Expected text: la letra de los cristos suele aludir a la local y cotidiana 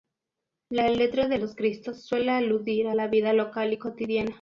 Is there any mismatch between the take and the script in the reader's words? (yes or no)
yes